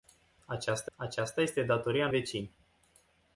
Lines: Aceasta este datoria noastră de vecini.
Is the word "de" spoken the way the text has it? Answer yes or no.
no